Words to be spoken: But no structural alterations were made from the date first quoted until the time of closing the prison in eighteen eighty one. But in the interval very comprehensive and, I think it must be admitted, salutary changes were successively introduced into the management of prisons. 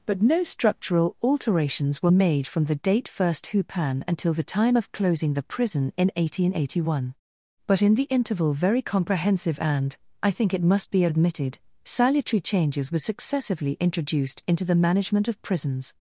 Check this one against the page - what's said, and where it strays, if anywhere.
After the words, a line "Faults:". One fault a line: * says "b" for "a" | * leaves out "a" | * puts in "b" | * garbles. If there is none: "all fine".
But no structural alterations were made from the date first hupan until the time of closing the prison in eighteen eighty one. But in the interval very comprehensive and, I think it must be admitted, salutary changes were successively introduced into the management of prisons.
Faults:
* says "hupan" for "quoted"